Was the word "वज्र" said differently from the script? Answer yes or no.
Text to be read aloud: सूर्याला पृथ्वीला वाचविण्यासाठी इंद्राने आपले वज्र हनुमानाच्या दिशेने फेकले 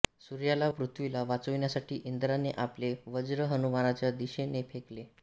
no